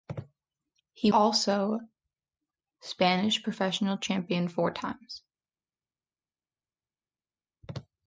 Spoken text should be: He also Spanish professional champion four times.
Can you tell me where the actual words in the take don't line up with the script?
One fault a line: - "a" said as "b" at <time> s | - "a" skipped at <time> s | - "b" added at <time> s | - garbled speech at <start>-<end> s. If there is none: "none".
none